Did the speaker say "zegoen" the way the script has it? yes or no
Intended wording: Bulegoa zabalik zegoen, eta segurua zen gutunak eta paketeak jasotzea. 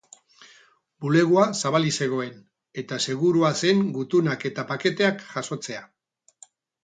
yes